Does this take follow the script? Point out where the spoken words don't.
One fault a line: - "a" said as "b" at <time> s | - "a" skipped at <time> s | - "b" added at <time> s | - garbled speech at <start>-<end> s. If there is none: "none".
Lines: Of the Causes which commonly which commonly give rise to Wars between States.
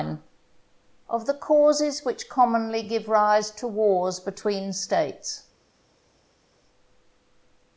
- "which commonly" skipped at 2.8 s